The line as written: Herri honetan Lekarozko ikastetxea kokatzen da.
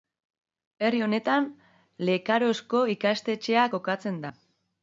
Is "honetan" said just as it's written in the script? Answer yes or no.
yes